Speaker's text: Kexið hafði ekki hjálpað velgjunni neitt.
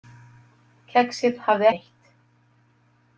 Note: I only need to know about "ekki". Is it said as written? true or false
false